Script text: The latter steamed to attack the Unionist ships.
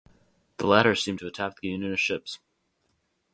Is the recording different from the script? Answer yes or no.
no